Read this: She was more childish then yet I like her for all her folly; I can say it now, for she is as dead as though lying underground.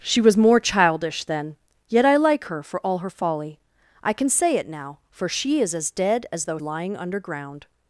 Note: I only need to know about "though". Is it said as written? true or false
true